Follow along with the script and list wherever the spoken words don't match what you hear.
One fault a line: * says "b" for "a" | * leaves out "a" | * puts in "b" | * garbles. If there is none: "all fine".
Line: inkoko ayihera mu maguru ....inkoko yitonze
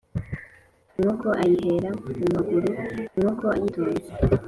all fine